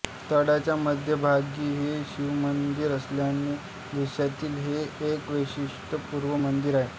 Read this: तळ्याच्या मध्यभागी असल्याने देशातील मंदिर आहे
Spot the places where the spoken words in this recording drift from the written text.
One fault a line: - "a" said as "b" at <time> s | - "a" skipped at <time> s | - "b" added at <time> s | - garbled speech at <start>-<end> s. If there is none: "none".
- "हे शिवमंदिर" added at 1.7 s
- "हे एक वैशिष्ट्यपूर्ण" added at 4.6 s